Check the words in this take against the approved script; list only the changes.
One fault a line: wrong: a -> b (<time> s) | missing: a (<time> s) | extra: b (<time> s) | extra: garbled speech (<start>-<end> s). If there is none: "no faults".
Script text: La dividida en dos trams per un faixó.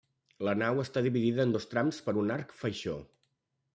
extra: nau està (0.6 s)
extra: arc (2.4 s)